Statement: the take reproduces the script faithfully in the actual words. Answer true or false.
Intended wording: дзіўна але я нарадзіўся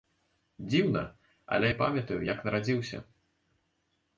false